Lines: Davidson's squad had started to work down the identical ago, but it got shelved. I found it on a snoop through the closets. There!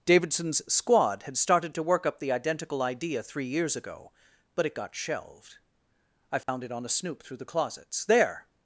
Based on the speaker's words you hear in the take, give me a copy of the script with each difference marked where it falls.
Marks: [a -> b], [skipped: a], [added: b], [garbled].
Davidson's squad had started to work [down -> up] the identical [added: idea three years] ago, but it got shelved. I found it on a snoop through the closets. There!